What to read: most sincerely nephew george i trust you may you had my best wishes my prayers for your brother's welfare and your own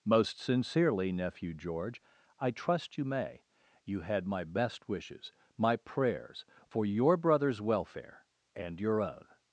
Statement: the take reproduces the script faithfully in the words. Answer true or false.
true